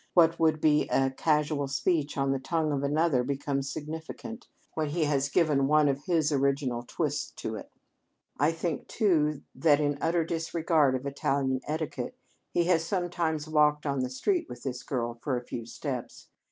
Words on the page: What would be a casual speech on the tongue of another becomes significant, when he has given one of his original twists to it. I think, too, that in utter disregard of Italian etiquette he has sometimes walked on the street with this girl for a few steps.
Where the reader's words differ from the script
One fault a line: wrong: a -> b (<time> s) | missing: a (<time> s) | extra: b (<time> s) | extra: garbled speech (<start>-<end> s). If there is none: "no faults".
no faults